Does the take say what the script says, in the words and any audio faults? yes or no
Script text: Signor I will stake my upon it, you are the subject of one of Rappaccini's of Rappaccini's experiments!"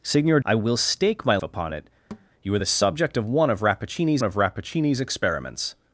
no